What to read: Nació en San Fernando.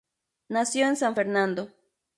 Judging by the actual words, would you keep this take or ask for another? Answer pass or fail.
pass